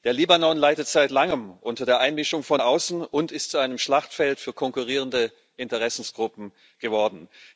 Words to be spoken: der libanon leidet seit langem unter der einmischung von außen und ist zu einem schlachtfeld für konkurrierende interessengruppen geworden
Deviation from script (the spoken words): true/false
false